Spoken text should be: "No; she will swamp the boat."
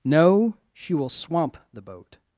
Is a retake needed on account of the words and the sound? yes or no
no